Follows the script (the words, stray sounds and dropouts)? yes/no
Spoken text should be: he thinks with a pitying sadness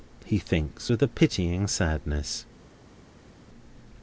yes